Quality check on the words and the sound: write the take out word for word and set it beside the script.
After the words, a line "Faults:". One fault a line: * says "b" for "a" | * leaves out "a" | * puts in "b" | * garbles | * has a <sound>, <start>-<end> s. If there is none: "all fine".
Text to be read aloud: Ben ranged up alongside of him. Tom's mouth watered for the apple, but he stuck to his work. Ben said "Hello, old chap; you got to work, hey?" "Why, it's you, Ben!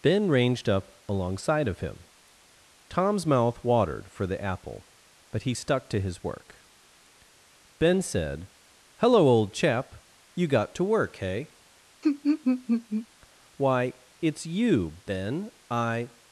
Ben ranged up alongside of him. Tom's mouth watered for the apple, but he stuck to his work. Ben said "Hello, old chap; you got to work, hey?" "Why, it's you, Ben! I
Faults:
* has a laugh, 12.0-13.1 s
* puts in "I"